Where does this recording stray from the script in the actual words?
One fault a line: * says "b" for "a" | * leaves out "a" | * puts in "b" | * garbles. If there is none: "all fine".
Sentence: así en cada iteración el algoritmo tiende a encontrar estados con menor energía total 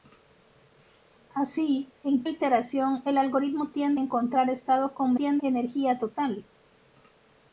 * leaves out "cada"
* leaves out "a"
* says "tiende" for "menor"